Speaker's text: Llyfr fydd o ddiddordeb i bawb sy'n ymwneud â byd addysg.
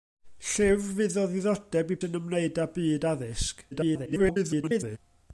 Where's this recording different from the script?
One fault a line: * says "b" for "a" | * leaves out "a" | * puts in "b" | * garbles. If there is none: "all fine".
* leaves out "bawb"
* garbles